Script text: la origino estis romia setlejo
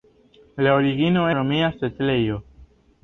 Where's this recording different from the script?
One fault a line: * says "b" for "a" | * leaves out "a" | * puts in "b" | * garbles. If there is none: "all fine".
* leaves out "estis"